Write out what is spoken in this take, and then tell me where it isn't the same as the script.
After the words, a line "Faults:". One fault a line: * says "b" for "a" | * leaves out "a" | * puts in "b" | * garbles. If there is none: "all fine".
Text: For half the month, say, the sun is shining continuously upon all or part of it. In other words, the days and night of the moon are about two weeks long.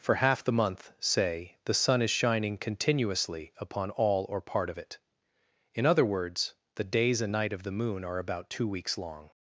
For half the month, say, the sun is shining continuously upon all or part of it. In other words, the days and night of the moon are about two weeks long.
Faults:
all fine